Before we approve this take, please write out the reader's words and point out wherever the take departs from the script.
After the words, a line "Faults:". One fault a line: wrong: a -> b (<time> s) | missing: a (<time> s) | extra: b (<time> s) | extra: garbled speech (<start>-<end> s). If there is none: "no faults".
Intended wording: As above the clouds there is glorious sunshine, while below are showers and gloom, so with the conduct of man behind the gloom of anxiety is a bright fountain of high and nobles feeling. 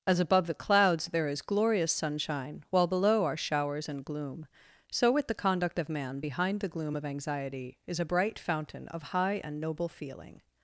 As above the clouds there is glorious sunshine, while below are showers and gloom, so with the conduct of man behind the gloom of anxiety is a bright fountain of high and noble feeling.
Faults:
wrong: nobles -> noble (9.6 s)